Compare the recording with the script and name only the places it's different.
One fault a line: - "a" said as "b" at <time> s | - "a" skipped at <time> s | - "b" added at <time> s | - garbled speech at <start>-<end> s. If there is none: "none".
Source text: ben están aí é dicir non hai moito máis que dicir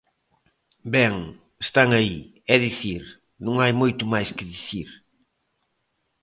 none